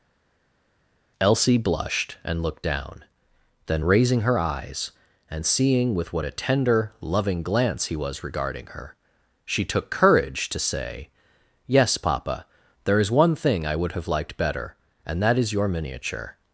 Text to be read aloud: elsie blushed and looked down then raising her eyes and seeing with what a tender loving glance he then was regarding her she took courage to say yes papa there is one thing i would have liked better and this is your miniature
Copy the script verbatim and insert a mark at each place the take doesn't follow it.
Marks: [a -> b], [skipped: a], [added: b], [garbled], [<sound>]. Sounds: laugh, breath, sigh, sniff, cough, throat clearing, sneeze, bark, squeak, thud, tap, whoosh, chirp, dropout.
elsie blushed and looked down then raising her eyes and seeing with what a tender loving glance he [skipped: then] was regarding her she took courage to say yes papa there is one thing i would have liked better and [this -> that] is your miniature